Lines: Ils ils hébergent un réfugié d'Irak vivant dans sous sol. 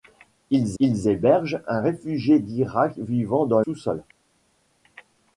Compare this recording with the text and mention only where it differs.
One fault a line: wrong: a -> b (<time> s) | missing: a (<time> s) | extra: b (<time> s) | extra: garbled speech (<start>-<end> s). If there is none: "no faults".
no faults